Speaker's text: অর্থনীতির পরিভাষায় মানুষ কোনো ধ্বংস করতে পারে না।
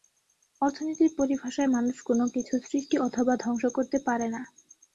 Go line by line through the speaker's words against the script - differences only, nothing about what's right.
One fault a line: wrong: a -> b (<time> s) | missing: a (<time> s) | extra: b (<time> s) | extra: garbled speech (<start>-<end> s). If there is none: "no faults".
extra: কিছু সৃষ্টি অথবা (2.4 s)